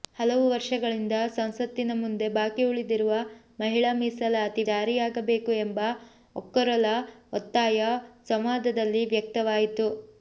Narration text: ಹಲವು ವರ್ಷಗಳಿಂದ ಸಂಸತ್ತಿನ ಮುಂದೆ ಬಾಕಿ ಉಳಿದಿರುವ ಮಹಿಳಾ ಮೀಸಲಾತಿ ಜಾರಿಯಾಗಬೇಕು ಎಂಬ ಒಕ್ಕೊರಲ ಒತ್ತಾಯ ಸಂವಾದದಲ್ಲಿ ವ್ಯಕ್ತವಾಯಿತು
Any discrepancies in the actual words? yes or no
no